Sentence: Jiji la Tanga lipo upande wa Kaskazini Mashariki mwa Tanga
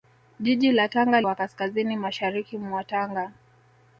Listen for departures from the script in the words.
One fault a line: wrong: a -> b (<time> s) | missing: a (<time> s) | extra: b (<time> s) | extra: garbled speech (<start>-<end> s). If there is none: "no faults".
missing: lipo upande (1.2 s)